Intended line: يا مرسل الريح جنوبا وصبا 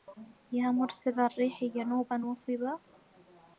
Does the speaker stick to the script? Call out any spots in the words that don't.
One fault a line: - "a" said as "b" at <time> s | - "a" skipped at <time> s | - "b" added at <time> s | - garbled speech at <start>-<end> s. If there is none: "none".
none